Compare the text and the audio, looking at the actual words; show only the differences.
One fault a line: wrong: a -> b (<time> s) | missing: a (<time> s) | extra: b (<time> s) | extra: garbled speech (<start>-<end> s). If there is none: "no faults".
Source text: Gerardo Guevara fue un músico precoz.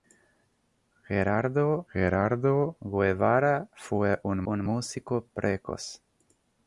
extra: gerardo (1.9 s)
extra: un (4.5 s)